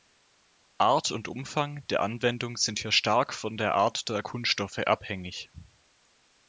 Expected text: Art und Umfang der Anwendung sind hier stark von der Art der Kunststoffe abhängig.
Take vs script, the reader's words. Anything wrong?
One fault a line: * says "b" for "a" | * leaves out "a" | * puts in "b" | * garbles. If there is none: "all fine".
all fine